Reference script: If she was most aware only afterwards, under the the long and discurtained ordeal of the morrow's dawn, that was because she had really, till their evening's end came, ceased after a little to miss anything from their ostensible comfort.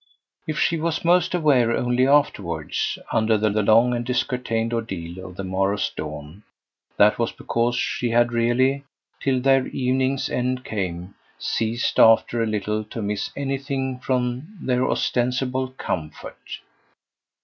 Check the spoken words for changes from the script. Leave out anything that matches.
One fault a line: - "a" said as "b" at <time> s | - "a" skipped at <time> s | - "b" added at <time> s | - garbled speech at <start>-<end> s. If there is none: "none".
none